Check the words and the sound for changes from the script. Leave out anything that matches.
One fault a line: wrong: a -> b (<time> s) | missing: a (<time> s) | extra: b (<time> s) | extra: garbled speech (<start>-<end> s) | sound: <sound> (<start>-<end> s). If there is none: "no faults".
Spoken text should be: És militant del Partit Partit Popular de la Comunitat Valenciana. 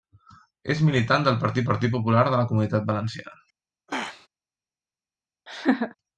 sound: throat clearing (3.9-4.3 s)
sound: laugh (5.5-6.0 s)